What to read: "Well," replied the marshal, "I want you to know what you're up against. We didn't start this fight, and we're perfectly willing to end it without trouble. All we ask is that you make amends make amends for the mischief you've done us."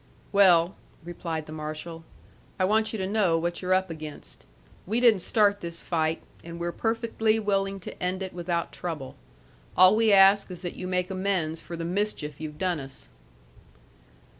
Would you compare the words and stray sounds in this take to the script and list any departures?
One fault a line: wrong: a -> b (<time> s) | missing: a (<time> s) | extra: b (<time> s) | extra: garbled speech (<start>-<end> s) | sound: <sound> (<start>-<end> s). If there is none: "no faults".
missing: make amends (11.6 s)